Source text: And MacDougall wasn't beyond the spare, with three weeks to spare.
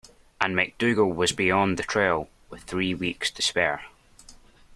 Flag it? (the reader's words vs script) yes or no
yes